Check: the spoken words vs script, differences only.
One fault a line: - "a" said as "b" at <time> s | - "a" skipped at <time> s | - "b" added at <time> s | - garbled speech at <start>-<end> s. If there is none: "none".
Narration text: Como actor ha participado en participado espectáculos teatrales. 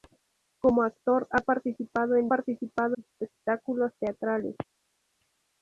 none